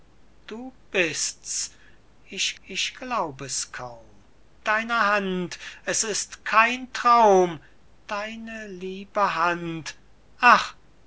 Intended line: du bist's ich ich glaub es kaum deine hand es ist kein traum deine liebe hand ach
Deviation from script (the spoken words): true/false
false